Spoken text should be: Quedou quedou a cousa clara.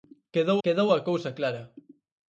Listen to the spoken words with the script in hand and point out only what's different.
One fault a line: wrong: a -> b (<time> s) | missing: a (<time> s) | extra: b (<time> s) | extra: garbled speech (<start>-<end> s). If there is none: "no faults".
no faults